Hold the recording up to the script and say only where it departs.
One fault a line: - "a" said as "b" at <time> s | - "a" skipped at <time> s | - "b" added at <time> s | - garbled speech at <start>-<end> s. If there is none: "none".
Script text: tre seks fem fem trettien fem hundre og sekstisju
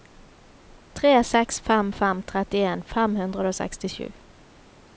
none